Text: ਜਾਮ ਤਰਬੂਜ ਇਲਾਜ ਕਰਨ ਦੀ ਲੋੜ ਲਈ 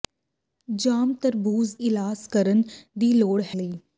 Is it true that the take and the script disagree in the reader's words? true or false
false